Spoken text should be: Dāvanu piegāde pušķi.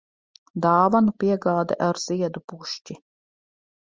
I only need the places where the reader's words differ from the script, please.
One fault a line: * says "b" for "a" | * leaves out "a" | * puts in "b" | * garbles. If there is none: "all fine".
* puts in "ar ziedu"